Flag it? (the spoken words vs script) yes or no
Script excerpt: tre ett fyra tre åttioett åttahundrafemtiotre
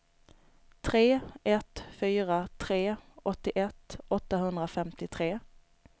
no